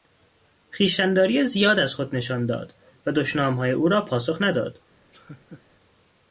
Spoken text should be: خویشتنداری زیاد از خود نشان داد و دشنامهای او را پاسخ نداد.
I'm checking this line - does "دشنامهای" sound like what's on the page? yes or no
yes